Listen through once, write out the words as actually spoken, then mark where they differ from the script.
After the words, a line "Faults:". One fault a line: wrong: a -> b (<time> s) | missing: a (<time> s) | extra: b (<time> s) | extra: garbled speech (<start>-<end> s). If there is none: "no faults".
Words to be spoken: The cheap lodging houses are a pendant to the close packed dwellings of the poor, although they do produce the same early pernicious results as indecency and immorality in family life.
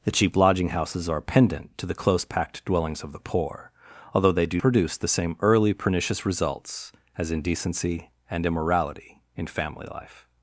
The cheap lodging houses are a pendant to the close packed dwellings of the poor, although they do produce the same early pernicious results as indecency and immorality in family life.
Faults:
no faults